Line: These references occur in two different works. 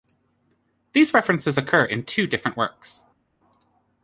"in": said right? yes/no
yes